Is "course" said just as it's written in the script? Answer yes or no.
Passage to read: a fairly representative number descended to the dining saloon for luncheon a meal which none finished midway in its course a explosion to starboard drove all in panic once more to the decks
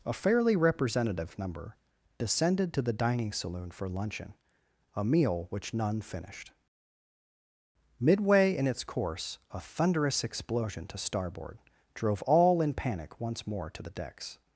yes